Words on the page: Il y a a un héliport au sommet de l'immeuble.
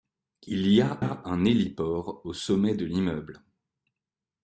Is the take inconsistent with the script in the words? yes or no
no